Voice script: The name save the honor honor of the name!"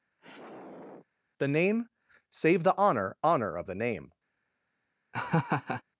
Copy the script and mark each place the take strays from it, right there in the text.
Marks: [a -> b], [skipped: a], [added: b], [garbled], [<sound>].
[sigh] The name save the honor honor of the name!" [laugh]